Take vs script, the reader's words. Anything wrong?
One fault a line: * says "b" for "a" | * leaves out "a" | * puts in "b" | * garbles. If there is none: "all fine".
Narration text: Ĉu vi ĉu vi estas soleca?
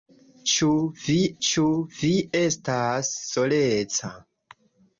all fine